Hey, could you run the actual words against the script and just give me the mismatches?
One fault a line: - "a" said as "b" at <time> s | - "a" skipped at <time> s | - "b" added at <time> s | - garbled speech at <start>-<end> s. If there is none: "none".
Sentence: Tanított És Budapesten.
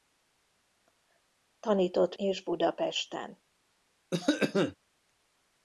none